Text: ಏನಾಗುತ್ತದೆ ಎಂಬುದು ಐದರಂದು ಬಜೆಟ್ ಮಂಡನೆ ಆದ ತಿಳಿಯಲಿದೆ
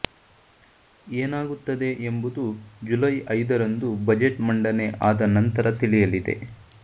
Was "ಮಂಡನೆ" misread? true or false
false